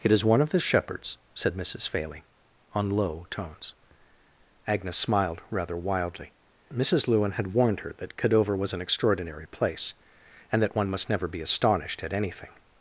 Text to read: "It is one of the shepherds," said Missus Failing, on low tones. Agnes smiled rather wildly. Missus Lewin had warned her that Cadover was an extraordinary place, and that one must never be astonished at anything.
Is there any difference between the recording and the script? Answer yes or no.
no